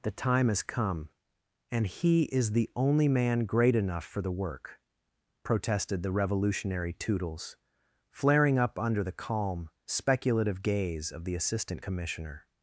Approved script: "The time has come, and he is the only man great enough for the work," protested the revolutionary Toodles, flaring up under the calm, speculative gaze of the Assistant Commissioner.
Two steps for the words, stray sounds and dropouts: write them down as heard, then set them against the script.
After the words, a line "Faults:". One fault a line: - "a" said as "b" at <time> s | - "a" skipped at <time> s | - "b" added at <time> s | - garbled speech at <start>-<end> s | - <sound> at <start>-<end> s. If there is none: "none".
"The time has come, and he is the only man great enough for the work," protested the revolutionary Toodles, flaring up under the calm, speculative gaze of the Assistant Commissioner.
Faults:
none